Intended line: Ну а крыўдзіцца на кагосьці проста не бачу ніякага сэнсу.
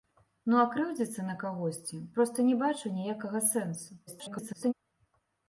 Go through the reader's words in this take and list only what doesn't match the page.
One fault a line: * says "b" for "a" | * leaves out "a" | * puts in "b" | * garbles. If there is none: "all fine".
* garbles